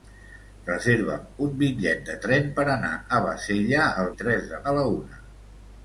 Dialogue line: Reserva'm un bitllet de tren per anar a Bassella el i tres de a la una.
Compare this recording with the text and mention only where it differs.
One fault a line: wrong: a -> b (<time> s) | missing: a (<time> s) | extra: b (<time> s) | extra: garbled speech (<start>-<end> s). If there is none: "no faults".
no faults